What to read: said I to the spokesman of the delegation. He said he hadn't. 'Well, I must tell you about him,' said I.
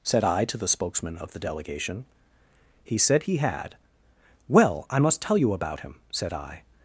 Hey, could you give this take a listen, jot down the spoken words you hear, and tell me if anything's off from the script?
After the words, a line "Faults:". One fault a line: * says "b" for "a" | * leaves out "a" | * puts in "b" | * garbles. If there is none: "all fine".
said I to the spokesman of the delegation. He said he had. 'Well, I must tell you about him,' said I.
Faults:
* says "had" for "hadn't"